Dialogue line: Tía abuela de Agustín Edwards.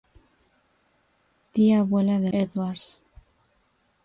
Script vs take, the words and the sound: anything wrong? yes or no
yes